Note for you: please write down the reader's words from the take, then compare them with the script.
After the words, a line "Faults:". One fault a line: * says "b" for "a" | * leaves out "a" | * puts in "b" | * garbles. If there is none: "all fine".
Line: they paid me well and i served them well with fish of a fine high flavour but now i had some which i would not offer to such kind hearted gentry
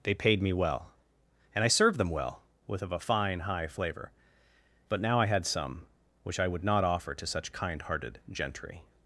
they paid me well and i served them well with of a fine high flavour but now i had some which i would not offer to such kind hearted gentry
Faults:
* leaves out "fish"